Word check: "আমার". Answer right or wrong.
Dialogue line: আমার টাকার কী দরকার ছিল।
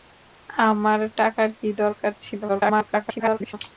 right